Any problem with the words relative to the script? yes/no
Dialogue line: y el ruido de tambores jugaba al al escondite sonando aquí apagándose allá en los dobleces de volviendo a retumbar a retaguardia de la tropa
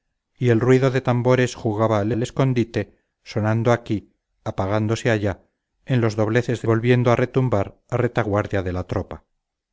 no